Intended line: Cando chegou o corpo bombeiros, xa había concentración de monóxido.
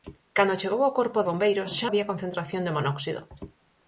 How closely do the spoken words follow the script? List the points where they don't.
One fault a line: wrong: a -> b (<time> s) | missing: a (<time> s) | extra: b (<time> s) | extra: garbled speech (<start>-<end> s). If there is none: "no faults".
no faults